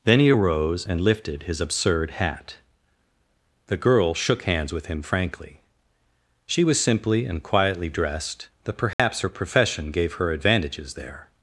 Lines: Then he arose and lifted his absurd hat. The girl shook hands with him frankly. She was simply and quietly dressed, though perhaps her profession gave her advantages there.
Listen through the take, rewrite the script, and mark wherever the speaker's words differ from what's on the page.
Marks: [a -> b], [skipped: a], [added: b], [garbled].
Then he arose and lifted his absurd hat. The girl shook hands with him frankly. She was simply and quietly dressed, though perhaps her profession gave her advantages there.